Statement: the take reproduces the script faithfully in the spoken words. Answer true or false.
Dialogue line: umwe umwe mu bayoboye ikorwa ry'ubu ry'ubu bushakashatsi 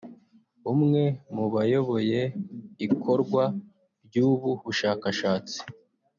false